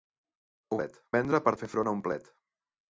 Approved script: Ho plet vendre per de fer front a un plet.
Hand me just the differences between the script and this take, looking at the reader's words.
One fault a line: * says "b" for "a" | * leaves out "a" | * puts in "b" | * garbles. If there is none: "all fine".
all fine